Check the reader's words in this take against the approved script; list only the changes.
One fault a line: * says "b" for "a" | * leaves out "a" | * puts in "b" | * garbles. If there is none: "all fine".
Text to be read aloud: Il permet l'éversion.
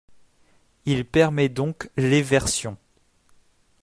* puts in "donc"